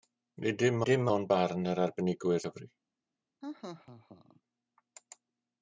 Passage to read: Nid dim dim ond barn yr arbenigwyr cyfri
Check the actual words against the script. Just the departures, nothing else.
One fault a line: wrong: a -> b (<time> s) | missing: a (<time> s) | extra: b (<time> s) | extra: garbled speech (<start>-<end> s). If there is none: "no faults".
no faults